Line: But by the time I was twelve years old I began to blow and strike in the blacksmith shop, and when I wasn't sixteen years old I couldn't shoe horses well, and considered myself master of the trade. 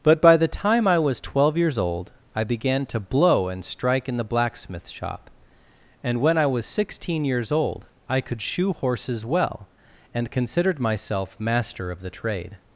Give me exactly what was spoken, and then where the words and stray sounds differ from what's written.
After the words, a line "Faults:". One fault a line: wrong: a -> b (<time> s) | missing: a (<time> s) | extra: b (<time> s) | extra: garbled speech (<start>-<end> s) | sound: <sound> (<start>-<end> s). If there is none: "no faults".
But by the time I was twelve years old I began to blow and strike in the blacksmith shop, and when I was sixteen years old I could shoe horses well, and considered myself master of the trade.
Faults:
wrong: wasn't -> was (6.5 s)
wrong: couldn't -> could (8.2 s)